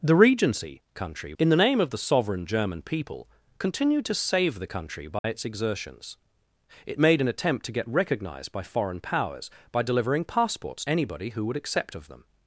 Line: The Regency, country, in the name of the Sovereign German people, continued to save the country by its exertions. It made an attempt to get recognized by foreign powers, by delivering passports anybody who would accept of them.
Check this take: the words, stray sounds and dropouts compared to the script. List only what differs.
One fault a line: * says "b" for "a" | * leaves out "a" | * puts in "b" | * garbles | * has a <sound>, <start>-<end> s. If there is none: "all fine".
* has a dropout, 5.2-5.2 s